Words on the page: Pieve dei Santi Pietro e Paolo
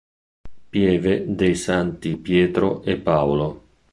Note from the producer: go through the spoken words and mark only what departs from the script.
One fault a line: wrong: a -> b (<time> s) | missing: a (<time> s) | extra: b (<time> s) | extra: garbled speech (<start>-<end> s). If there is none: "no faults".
no faults